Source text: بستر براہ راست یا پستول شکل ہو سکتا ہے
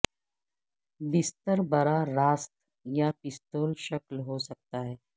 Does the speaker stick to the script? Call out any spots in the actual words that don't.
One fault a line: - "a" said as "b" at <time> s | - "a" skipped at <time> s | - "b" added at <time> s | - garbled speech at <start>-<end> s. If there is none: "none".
none